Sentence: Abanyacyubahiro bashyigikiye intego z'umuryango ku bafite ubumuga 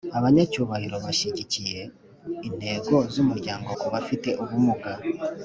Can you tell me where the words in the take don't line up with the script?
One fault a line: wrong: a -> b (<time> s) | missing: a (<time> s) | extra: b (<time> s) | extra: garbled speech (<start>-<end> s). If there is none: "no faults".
no faults